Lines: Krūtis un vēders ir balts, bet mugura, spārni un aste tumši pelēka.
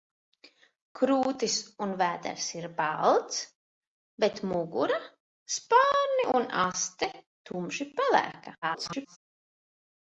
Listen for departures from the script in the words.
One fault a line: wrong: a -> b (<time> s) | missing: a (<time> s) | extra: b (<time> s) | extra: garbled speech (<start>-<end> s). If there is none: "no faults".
extra: garbled speech (8.6-9.2 s)